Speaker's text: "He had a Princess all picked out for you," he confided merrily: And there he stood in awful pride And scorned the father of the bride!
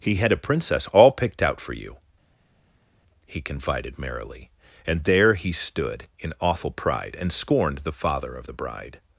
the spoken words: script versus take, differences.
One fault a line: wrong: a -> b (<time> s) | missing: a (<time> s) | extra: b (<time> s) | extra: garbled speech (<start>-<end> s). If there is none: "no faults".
no faults